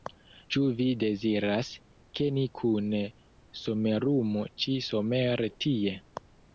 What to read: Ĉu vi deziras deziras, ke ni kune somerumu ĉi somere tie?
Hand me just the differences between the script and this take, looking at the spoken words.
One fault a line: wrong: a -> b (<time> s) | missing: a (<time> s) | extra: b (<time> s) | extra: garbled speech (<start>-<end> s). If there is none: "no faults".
missing: deziras (1.7 s)